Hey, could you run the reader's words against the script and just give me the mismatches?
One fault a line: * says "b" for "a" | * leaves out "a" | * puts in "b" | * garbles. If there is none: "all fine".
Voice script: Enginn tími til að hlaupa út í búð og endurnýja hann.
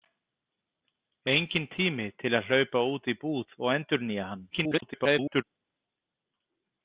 * garbles